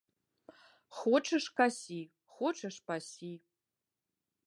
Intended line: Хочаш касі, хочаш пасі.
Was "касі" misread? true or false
false